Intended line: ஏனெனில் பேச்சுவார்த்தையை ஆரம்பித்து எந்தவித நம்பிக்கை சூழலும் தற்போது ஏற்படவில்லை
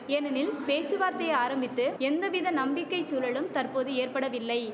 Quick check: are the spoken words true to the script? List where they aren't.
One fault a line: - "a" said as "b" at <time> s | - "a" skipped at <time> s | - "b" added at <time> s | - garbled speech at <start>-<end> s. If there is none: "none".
none